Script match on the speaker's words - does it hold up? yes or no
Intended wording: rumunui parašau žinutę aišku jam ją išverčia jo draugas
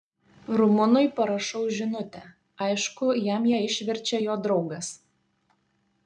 yes